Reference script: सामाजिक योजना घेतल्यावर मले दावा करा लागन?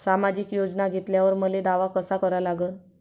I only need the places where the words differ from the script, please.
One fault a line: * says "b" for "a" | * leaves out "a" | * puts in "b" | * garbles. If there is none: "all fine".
* puts in "कसा"